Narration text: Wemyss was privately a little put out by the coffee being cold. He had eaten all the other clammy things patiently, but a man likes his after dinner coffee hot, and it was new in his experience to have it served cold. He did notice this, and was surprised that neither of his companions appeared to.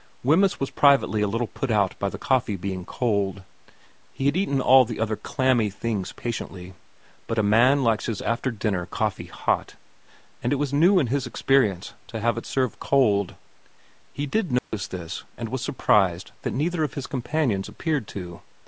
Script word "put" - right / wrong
right